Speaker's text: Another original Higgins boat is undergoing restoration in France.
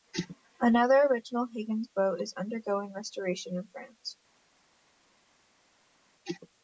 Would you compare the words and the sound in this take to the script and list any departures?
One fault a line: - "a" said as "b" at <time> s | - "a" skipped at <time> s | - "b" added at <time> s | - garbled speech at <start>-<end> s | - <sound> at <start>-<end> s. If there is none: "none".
none